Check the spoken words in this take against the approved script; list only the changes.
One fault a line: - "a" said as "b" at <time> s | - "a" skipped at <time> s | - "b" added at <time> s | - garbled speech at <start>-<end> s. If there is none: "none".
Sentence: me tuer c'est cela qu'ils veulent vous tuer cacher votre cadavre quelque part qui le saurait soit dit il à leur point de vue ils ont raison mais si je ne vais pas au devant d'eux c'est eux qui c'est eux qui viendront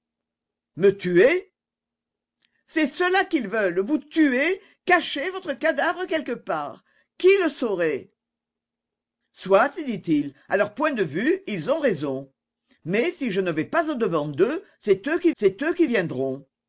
none